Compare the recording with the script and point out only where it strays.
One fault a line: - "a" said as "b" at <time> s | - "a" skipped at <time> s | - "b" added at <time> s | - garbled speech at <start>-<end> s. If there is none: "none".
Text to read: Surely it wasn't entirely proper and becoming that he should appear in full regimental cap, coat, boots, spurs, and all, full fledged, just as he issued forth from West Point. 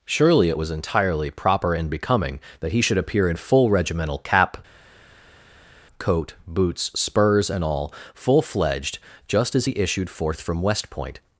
- "wasn't" said as "was" at 0.6 s